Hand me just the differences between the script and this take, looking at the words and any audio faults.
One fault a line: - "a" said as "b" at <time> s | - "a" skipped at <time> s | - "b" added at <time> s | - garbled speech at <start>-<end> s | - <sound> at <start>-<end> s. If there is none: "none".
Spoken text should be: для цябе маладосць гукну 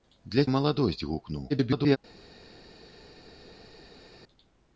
- "цябе" skipped at 0.4 s
- garbled speech at 1.5-2.0 s